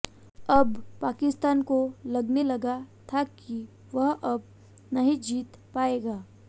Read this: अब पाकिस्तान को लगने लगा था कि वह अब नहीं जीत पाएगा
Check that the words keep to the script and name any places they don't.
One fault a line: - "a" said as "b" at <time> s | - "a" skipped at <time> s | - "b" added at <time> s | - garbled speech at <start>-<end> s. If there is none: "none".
none